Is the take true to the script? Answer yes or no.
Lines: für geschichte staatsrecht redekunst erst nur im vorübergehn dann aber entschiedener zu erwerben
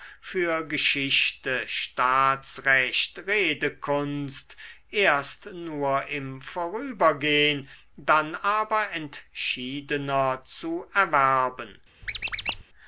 yes